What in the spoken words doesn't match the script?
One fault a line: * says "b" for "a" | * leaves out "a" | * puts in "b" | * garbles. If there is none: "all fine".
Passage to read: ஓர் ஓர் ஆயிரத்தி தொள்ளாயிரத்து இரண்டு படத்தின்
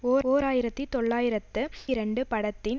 all fine